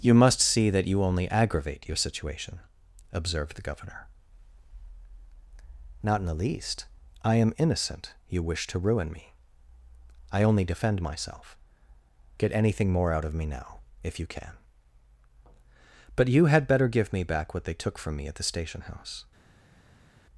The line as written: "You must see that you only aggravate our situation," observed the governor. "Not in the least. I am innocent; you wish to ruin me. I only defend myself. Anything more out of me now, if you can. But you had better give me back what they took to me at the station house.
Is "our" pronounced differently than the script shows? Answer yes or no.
yes